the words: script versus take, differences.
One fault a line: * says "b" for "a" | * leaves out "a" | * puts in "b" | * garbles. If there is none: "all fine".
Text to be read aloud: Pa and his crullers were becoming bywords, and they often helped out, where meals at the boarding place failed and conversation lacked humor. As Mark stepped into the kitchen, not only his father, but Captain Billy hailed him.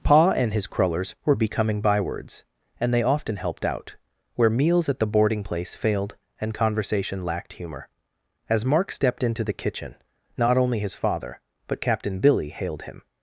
all fine